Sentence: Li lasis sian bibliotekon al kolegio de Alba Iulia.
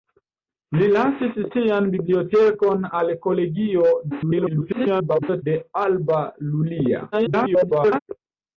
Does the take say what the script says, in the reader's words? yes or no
no